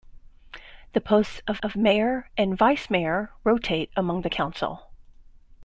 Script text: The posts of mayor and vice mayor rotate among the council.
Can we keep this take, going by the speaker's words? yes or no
no